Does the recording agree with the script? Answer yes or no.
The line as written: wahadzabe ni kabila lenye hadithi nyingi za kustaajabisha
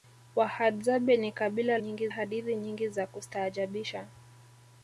no